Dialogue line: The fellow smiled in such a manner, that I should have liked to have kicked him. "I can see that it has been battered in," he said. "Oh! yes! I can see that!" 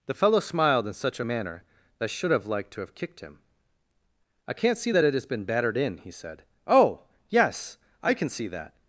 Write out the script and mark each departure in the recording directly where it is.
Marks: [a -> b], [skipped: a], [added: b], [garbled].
The fellow smiled in such a manner, that I should have liked to have kicked him. "I [can -> can't] see that it has been battered in," he said. "Oh! yes! I can see that!"